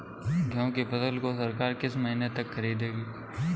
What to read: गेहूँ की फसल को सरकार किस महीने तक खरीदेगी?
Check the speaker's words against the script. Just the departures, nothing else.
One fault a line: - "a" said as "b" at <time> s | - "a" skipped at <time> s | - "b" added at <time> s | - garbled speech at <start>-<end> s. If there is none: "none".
none